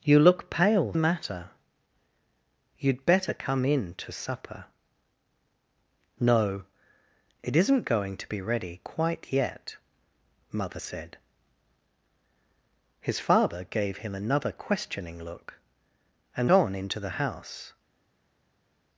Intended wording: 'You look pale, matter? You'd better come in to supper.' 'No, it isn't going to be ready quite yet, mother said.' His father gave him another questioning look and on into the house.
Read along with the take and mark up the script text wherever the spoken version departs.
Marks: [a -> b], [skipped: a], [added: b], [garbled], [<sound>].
'You look pale, matter? You'd better come in to supper.' 'No, it isn't going to be ready quite yet, mother said.' His father gave him another questioning look and on into the house.